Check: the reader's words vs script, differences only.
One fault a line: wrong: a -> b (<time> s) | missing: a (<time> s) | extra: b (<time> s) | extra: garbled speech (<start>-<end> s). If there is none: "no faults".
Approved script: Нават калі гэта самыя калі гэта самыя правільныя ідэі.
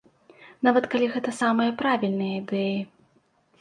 missing: калі гэта самыя (1.8 s)